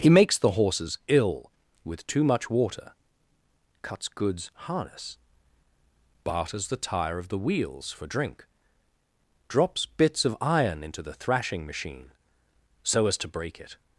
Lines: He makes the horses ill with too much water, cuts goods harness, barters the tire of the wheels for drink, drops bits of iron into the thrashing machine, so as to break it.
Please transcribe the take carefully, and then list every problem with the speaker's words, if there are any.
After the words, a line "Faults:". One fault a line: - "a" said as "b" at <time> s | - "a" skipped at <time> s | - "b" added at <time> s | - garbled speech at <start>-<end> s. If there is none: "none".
He makes the horses ill with too much water, cuts goods harness, barters the tire of the wheels for drink, drops bits of iron into the thrashing machine, so as to break it.
Faults:
none